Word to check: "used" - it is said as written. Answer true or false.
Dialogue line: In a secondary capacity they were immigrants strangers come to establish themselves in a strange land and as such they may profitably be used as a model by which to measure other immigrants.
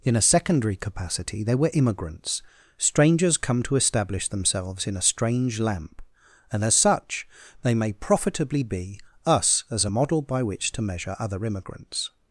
false